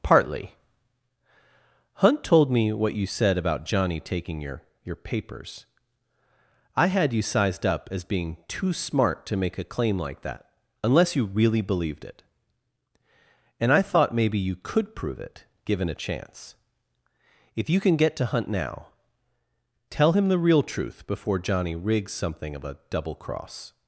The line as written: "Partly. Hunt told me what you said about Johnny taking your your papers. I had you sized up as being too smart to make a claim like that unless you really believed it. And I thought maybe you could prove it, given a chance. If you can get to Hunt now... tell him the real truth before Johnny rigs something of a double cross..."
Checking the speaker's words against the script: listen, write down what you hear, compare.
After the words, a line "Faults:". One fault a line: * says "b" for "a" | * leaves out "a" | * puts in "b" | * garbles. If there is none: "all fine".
"Partly. Hunt told me what you said about Johnny taking your your papers. I had you sized up as being too smart to make a claim like that unless you really believed it. And I thought maybe you could prove it, given a chance. If you can get to Hunt now... tell him the real truth before Johnny rigs something of a double cross..."
Faults:
all fine